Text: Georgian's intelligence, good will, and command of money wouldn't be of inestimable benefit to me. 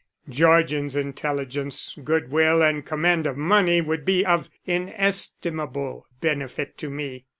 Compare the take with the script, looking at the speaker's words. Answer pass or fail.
fail